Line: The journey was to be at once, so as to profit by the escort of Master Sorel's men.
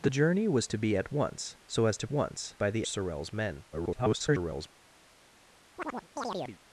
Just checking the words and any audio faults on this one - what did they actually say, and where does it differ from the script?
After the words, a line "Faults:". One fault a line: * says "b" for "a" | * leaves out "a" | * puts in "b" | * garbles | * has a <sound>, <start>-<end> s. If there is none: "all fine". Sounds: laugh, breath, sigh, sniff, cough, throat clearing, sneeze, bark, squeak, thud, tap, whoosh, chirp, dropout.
The journey was to be at once, so as to once by the Sorel's men. [garbled]
Faults:
* says "once" for "profit"
* leaves out "escort of Master"
* garbles
* has a chirp, 5.8-6.6 s